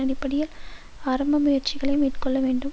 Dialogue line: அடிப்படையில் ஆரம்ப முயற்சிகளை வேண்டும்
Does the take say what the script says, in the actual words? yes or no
no